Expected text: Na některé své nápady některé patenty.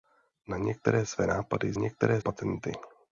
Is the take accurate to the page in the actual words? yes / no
yes